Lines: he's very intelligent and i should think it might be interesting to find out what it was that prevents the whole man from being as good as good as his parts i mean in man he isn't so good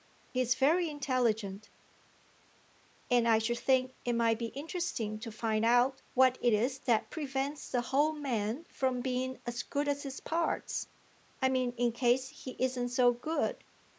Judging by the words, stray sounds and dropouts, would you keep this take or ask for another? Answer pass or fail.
fail